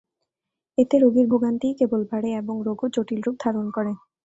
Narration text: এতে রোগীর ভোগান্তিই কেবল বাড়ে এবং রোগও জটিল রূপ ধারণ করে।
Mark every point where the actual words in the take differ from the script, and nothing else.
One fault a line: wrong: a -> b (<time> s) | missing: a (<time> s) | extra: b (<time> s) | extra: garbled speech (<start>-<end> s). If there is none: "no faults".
no faults